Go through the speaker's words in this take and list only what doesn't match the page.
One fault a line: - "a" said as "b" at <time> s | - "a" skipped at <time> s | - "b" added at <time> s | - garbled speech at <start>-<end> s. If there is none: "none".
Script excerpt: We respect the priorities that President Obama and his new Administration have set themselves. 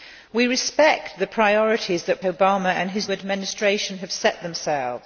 - "President" skipped at 2.2 s
- "new" skipped at 3.1 s